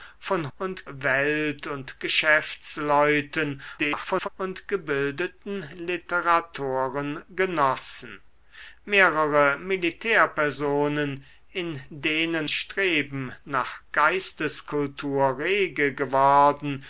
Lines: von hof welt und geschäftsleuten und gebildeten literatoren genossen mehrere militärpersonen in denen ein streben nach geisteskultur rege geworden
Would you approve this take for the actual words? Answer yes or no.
no